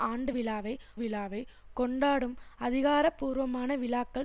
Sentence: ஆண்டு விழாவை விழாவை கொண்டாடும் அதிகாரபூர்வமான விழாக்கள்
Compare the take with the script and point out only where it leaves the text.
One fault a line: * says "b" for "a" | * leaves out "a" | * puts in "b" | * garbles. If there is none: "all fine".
all fine